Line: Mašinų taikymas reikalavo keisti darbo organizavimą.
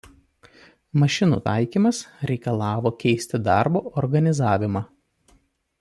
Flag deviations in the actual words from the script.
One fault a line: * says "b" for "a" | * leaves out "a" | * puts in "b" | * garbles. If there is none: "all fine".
all fine